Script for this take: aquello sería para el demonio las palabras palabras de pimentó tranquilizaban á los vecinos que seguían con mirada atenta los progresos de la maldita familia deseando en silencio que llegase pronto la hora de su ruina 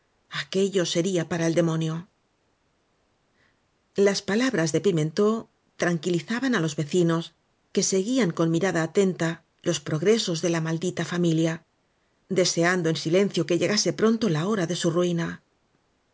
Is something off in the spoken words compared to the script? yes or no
yes